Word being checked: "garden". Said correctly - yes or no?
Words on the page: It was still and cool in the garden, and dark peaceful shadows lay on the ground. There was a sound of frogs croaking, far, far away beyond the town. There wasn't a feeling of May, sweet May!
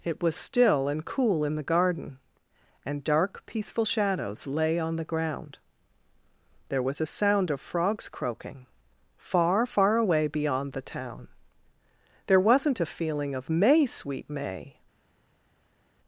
yes